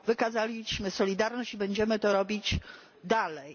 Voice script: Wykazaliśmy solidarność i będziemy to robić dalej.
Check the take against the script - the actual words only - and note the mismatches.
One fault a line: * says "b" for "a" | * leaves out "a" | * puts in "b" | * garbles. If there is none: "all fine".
all fine